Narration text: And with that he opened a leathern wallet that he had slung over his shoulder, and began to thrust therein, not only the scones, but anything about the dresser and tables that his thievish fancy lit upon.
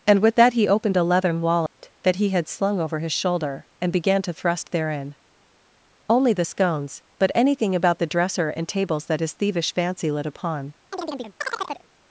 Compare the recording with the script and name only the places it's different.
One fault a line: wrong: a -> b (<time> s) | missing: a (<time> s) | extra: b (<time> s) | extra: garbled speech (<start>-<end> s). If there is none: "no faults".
missing: not (5.2 s)